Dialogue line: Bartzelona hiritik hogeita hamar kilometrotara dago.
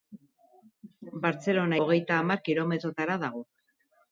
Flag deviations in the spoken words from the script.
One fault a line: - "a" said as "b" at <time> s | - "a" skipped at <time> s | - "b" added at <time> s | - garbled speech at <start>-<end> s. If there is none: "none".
- "hiritik" skipped at 1.8 s